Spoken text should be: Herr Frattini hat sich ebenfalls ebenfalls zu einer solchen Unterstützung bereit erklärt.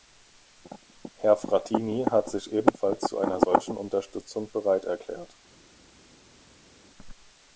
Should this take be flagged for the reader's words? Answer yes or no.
yes